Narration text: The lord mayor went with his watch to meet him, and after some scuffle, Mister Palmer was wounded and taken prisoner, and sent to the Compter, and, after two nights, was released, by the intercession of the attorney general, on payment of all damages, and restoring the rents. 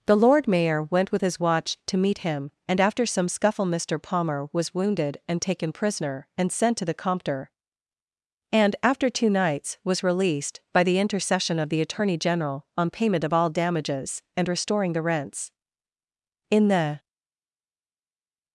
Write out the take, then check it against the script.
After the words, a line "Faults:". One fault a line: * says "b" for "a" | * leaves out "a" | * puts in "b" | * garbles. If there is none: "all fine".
The lord mayor went with his watch to meet him, and after some scuffle, Mister Palmer was wounded and taken prisoner, and sent to the Compter, and, after two nights, was released, by the intercession of the attorney general, on payment of all damages, and restoring the rents. In the
Faults:
* puts in "In the"